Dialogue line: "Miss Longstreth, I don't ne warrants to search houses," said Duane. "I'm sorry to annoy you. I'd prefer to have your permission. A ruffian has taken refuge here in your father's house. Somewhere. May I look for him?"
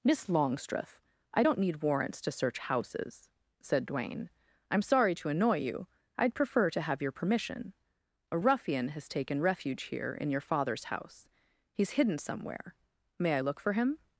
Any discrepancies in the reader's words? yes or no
yes